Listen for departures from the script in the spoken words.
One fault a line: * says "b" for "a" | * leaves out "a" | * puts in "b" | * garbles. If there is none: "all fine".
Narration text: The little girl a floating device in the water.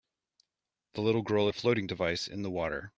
all fine